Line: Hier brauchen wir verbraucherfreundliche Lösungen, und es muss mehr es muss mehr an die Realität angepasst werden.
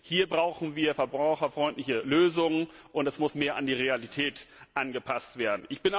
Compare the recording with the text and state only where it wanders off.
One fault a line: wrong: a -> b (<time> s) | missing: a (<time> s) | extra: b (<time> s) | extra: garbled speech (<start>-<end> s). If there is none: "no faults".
missing: es muss mehr (3.5 s)